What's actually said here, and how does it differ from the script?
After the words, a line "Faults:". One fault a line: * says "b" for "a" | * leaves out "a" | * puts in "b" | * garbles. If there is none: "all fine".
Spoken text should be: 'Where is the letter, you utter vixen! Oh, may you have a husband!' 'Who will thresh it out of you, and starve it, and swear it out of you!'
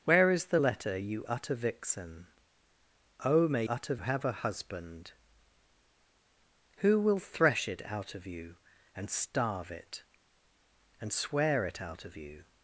'Where is the letter, you utter vixen! Oh, may utter have a husband!' 'Who will thresh it out of you, and starve it, and swear it out of you!'
Faults:
* says "utter" for "you"